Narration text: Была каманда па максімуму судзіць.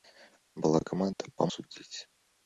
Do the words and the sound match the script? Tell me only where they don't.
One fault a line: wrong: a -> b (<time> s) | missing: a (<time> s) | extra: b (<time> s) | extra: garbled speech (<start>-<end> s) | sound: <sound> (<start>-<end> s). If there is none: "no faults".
sound: dropout (1.1-1.2 s)
missing: максімуму (1.5 s)